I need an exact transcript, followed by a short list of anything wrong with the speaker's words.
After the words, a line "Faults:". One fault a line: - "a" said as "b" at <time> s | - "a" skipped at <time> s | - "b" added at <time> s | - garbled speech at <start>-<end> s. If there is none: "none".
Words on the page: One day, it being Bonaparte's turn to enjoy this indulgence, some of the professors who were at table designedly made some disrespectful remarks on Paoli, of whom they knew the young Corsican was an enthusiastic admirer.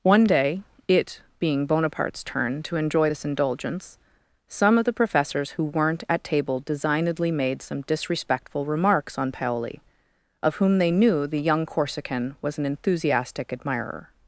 One day, it being Bonaparte's turn to enjoy this indulgence, some of the professors who weren't at table designedly made some disrespectful remarks on Paoli, of whom they knew the young Corsican was an enthusiastic admirer.
Faults:
- "were" said as "weren't" at 5.6 s